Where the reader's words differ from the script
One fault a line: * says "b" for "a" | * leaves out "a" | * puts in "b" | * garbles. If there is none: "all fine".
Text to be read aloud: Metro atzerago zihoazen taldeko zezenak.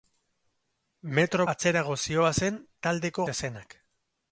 all fine